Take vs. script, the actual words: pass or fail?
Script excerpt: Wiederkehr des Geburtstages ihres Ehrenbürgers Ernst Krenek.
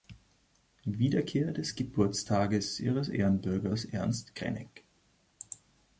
pass